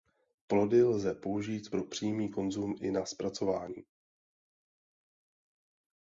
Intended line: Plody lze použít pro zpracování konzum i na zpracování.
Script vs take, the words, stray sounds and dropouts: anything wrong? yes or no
yes